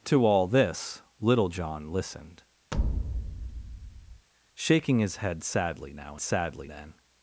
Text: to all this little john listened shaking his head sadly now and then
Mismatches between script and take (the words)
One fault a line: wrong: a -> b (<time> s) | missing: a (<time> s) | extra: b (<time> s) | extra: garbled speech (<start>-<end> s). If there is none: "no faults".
wrong: and -> sadly (6.2 s)